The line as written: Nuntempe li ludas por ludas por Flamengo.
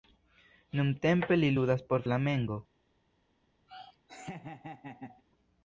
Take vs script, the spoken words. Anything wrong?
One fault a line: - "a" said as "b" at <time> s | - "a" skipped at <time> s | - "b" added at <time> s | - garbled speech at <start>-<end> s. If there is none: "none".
- "ludas por" skipped at 2.0 s